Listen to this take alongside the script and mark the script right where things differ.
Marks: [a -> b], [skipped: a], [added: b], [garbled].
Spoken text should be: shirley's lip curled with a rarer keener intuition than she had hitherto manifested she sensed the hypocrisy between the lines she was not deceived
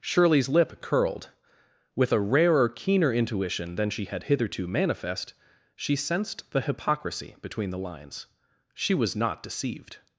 shirley's lip curled with a rarer keener intuition than she had hitherto [manifested -> manifest] she sensed the hypocrisy between the lines she was not deceived